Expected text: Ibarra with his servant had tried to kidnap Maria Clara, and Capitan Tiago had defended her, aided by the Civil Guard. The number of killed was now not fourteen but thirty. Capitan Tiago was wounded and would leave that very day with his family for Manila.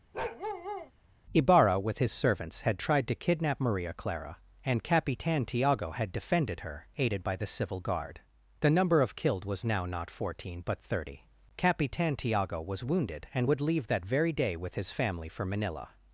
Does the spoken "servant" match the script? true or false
false